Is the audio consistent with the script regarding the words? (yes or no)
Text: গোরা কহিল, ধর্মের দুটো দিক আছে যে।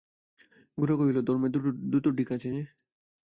yes